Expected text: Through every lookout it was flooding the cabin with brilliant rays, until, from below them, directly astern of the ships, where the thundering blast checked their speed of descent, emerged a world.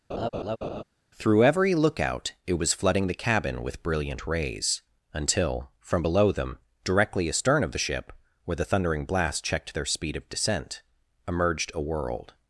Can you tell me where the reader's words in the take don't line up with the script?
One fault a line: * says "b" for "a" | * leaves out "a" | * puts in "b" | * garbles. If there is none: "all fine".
* says "ship" for "ships"